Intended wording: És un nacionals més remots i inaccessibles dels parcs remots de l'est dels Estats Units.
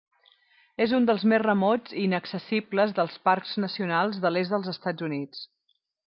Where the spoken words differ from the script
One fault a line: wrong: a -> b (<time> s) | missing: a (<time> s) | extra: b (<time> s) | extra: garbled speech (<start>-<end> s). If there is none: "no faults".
wrong: nacionals -> dels (1.1 s)
wrong: remots -> nacionals (3.7 s)